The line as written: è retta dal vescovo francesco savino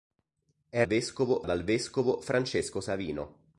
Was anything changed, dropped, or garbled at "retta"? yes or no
yes